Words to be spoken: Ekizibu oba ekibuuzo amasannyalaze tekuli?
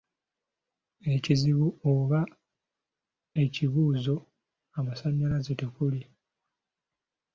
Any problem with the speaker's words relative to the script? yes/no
no